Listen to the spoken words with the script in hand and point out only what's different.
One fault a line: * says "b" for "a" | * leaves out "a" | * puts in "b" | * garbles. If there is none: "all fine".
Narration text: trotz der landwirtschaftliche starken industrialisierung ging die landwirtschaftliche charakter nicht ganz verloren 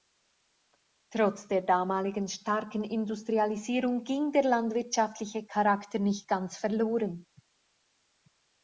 * says "damaligen" for "landwirtschaftliche"
* says "der" for "die"